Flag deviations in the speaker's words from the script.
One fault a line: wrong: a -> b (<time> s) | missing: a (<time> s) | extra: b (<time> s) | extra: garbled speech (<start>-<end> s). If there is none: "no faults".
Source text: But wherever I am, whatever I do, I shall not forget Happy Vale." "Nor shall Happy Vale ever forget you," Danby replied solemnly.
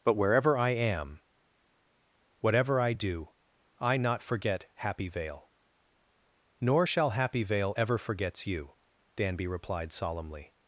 missing: shall (4.0 s)
wrong: forget -> forgets (8.0 s)